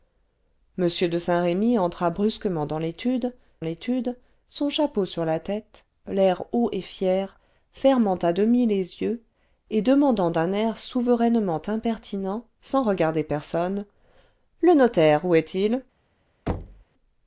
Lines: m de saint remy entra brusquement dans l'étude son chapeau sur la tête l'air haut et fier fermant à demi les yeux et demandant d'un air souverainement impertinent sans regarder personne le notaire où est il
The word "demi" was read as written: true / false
true